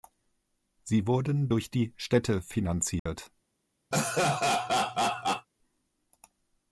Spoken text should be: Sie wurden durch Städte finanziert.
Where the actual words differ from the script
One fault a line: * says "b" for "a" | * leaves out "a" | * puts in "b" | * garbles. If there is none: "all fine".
* puts in "die"